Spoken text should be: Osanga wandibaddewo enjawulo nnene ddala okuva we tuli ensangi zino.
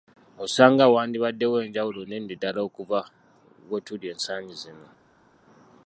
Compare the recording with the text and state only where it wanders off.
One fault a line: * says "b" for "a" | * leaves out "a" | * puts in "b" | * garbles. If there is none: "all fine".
all fine